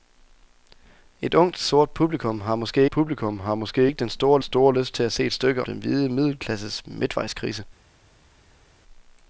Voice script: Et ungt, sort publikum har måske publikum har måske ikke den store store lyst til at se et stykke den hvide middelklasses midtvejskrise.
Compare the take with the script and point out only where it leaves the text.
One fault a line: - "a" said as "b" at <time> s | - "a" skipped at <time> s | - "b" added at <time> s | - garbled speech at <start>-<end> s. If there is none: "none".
none